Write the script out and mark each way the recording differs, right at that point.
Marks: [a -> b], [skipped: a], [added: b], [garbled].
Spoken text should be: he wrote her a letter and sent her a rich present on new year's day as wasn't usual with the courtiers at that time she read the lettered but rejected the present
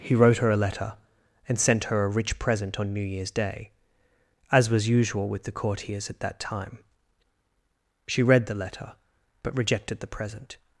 he wrote her a letter and sent her a rich present on new year's day as [wasn't -> was] usual with the courtiers at that time she read the [lettered -> letter] but rejected the present